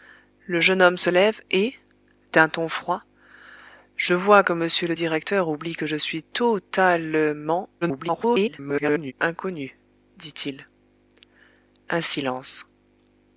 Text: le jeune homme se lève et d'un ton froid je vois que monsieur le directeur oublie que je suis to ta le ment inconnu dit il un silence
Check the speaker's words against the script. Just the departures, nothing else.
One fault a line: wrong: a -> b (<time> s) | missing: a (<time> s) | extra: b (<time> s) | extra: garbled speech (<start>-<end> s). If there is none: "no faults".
extra: garbled speech (7.8-9.1 s)